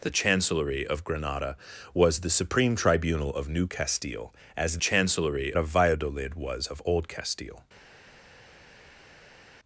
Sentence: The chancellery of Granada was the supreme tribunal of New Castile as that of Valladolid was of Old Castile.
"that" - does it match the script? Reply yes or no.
no